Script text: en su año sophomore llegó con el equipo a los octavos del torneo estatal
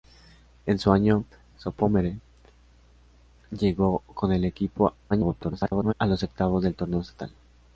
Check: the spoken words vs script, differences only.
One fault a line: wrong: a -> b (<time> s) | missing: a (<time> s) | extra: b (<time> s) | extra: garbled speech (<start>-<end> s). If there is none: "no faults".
extra: garbled speech (5.1-5.9 s)